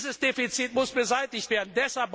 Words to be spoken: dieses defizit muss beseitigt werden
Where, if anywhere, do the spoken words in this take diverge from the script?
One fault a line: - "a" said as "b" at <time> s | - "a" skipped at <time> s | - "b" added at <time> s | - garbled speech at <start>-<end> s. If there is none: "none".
none